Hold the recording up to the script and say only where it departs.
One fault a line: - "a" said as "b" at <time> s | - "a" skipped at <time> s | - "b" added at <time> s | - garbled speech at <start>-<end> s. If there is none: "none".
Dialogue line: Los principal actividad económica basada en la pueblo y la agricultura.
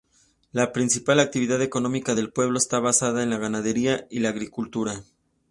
- "Los" said as "La" at 0.5 s
- "del pueblo está" added at 2.1 s
- "pueblo" said as "ganadería" at 3.4 s